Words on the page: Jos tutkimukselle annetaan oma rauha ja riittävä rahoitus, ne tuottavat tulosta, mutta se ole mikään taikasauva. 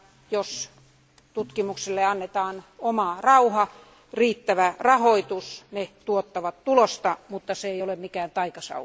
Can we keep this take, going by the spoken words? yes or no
no